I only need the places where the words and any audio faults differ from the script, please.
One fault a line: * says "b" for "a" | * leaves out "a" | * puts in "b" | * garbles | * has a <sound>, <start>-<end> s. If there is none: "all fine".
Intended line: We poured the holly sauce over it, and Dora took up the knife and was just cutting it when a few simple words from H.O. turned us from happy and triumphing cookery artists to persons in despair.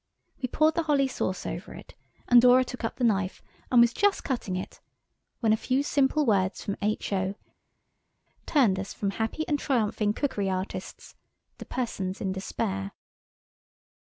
all fine